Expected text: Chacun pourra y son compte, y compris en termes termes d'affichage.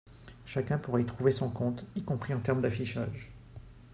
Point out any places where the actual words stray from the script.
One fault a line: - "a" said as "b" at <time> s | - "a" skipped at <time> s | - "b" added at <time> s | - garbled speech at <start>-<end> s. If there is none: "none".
- "trouver" added at 1.1 s
- "termes" skipped at 2.6 s